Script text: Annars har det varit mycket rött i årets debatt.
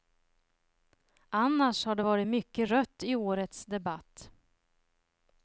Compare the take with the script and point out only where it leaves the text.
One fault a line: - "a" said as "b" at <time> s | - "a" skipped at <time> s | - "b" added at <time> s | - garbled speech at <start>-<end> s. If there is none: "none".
none